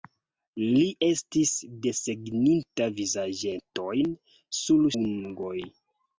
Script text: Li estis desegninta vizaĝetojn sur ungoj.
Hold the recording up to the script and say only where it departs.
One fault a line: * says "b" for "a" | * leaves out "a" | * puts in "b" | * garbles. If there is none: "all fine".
all fine